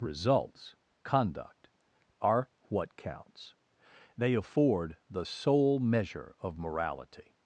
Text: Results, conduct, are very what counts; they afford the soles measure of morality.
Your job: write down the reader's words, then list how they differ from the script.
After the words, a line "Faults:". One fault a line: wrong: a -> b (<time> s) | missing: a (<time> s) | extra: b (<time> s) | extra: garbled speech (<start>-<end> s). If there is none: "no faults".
Results, conduct, are what counts; they afford the sole measure of morality.
Faults:
missing: very (2.5 s)
wrong: soles -> sole (5.2 s)